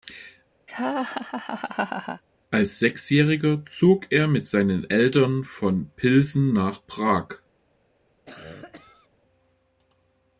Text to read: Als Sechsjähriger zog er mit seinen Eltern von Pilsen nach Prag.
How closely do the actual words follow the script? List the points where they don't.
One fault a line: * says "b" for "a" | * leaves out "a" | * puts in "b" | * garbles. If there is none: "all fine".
all fine